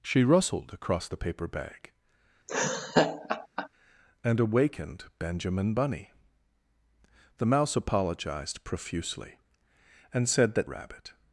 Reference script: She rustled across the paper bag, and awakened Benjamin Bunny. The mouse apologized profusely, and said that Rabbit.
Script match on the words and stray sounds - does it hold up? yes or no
no